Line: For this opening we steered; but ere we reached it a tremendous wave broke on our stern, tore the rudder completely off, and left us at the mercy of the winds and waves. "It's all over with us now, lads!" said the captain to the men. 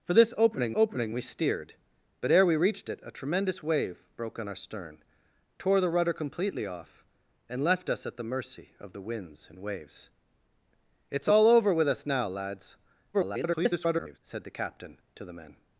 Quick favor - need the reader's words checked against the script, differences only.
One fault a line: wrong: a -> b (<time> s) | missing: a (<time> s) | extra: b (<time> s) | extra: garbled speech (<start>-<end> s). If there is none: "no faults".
extra: opening (0.7 s)
extra: garbled speech (13.1-14.2 s)